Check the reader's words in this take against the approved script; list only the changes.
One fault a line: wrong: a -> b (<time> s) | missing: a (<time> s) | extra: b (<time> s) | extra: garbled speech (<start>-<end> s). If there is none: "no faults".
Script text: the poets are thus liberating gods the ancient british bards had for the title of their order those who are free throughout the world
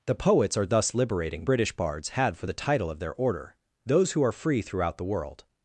missing: gods the ancient (1.4 s)